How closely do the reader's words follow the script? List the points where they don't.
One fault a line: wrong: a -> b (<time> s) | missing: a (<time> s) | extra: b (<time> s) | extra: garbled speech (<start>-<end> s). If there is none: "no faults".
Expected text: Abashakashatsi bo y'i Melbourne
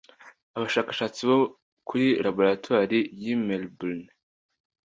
extra: kuri laboratoire (1.9 s)